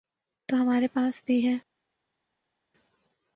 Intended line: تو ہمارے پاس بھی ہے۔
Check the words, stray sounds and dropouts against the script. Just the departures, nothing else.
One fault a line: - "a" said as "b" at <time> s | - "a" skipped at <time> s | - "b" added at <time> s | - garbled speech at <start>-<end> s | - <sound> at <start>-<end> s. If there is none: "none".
none